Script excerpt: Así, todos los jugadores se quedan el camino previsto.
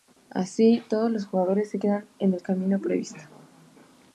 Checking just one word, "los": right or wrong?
right